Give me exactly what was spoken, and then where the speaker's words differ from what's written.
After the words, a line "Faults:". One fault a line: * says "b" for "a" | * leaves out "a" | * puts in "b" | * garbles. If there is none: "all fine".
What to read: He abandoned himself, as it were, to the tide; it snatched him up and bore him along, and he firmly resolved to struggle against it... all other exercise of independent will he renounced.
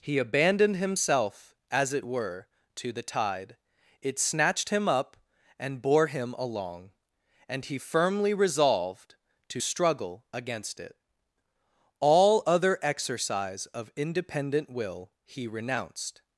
He abandoned himself, as it were, to the tide; it snatched him up and bore him along, and he firmly resolved to struggle against it... all other exercise of independent will he renounced.
Faults:
all fine